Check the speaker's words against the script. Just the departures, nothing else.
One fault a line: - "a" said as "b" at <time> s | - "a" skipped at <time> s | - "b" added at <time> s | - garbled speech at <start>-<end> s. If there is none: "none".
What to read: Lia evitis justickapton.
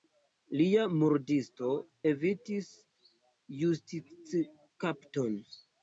- "murdisto" added at 1.0 s